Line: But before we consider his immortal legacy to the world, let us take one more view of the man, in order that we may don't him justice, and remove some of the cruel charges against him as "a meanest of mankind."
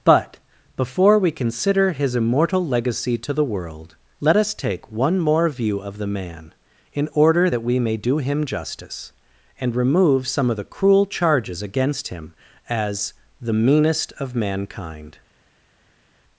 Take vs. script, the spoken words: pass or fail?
fail